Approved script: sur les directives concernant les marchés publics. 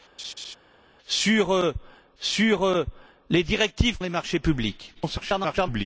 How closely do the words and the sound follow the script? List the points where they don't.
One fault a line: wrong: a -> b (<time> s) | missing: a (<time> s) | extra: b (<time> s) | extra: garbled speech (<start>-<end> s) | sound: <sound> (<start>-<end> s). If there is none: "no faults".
sound: laugh (0.2-0.6 s)
extra: sur (2.2 s)
missing: concernant (4.0 s)
extra: garbled speech (4.9-5.9 s)